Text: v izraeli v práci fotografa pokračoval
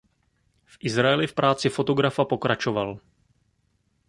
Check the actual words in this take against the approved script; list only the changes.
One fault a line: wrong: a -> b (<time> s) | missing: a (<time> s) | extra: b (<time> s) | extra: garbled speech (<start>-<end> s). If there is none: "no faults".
no faults